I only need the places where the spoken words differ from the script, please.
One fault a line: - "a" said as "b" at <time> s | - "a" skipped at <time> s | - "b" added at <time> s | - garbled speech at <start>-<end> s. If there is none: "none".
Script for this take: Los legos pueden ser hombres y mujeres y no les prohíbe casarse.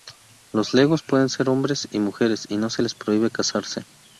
- "se" added at 2.7 s